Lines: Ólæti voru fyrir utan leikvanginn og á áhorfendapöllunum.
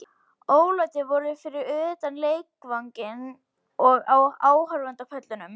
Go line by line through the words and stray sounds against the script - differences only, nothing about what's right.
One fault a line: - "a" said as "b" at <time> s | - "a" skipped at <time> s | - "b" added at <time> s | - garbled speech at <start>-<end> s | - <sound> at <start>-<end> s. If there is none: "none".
none